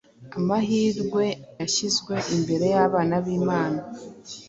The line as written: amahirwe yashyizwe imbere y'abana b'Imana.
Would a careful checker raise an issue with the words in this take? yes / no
no